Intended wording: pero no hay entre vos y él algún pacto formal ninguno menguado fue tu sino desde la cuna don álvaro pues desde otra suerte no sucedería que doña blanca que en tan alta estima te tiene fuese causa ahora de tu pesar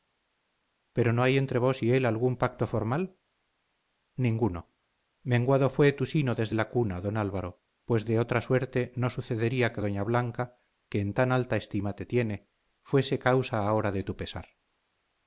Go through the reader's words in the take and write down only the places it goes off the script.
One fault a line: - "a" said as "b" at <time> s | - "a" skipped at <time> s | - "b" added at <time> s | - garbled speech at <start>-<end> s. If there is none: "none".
- "desde" said as "de" at 8.0 s